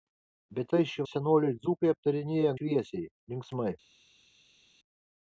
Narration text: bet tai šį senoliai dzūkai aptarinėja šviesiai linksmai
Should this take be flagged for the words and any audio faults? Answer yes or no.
no